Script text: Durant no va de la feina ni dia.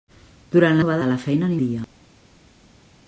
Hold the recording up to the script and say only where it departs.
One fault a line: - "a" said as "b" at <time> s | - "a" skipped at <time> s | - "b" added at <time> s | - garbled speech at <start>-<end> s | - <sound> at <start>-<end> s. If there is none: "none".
none